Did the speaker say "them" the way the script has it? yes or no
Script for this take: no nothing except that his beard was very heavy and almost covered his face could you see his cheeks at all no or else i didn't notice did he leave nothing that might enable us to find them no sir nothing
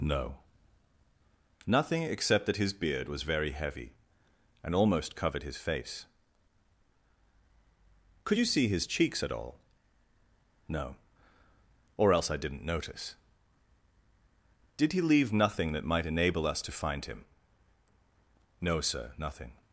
no